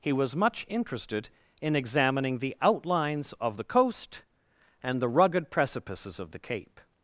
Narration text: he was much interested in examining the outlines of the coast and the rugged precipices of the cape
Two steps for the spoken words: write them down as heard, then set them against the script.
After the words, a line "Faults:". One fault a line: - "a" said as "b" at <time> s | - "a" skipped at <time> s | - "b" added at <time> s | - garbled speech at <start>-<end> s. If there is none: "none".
he was much interested in examining the outlines of the coast and the rugged precipices of the cape
Faults:
none